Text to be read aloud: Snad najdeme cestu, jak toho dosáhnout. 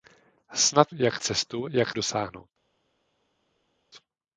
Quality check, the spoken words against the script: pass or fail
fail